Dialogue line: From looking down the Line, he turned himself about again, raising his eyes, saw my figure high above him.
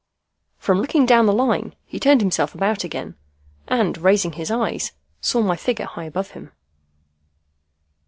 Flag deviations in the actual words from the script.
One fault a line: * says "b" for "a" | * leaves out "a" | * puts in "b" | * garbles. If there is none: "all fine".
* puts in "and"